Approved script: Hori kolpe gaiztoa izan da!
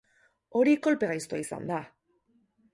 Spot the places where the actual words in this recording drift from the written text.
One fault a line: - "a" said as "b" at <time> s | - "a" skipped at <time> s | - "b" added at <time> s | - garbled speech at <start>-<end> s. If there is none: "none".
none